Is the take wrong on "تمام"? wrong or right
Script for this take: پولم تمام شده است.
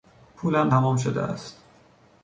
right